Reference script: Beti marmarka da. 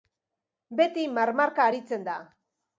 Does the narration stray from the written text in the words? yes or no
yes